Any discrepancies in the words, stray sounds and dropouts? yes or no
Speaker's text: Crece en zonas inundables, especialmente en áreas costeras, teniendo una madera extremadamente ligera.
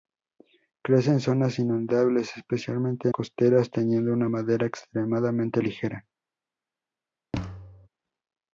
yes